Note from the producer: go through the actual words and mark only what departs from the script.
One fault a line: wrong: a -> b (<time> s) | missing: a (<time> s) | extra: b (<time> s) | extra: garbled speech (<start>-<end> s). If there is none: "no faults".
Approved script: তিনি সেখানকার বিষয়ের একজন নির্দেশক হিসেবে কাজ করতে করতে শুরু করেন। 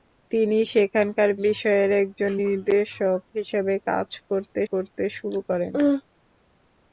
no faults